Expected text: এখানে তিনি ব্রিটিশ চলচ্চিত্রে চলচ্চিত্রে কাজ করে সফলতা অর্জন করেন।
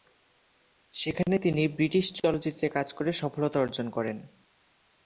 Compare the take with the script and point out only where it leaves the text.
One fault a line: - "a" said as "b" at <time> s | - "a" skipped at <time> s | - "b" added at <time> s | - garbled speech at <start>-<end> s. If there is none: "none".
- "এখানে" said as "সেখানে" at 0.9 s
- "চলচ্চিত্রে" skipped at 2.7 s